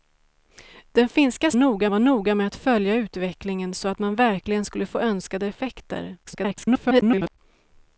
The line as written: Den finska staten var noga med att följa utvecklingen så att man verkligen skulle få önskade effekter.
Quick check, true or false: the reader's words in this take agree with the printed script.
false